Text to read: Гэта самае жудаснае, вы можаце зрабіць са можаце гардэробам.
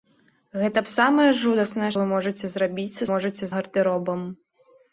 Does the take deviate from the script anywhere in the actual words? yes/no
no